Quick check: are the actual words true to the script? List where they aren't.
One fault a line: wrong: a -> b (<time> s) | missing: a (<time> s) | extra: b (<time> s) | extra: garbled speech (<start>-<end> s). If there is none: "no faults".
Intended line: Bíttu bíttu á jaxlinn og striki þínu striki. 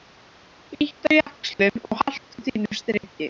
missing: bíttu (1.1 s)
wrong: striki -> haltu (2.0 s)